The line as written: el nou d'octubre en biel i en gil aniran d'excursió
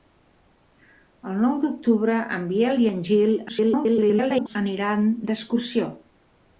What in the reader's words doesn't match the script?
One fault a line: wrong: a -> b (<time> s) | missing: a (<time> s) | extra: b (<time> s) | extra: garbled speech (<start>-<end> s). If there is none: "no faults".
extra: garbled speech (3.5-4.6 s)